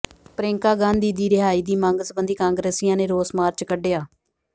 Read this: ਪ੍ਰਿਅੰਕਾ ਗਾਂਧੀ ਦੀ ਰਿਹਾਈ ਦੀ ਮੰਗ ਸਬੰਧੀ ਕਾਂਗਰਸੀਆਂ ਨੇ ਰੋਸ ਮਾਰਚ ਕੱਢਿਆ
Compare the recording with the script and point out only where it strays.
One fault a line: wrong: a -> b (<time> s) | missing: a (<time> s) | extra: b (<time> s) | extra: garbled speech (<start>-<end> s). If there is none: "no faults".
no faults